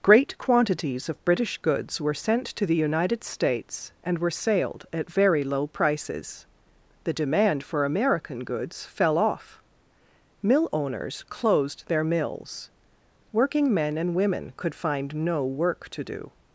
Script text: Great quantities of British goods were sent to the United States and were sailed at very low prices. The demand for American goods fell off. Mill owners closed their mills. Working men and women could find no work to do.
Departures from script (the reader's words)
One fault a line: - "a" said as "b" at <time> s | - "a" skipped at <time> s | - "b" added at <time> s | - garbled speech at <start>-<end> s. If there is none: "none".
none